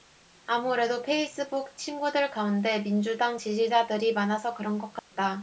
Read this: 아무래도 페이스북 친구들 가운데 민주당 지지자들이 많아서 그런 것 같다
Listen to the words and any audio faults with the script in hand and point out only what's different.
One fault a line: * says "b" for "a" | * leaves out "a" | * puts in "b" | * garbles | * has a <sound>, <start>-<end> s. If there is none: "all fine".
* has a dropout, 5.0-5.1 s